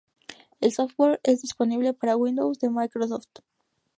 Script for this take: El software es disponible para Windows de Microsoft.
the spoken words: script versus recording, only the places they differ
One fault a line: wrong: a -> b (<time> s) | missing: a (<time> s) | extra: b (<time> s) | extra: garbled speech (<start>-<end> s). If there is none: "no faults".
no faults